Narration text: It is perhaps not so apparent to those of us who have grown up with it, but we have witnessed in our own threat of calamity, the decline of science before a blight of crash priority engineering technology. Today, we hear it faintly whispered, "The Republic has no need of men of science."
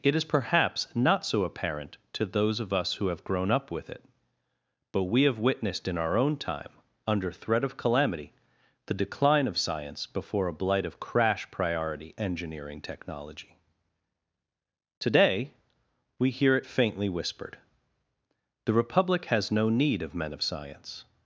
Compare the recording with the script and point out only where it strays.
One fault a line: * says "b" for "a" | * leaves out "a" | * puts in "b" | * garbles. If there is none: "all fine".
* puts in "time under"